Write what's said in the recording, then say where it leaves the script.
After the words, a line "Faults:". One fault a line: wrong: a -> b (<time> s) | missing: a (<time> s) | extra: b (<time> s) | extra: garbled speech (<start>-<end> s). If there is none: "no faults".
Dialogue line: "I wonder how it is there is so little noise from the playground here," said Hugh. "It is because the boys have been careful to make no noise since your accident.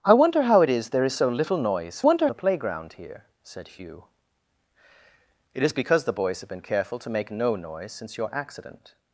"I wonder how it is there is so little noise wonder the playground here," said Hugh. "It is because the boys have been careful to make no noise since your accident.
Faults:
wrong: from -> wonder (2.0 s)